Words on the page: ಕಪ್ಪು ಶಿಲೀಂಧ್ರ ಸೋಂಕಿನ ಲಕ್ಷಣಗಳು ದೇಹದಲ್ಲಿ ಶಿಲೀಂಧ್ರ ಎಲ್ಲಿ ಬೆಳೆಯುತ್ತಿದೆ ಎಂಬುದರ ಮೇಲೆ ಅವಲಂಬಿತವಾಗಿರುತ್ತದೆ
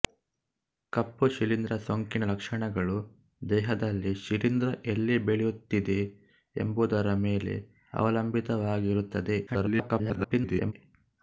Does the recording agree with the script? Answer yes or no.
no